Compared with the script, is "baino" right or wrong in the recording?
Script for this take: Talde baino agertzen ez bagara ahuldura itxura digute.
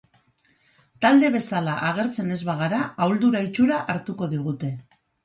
wrong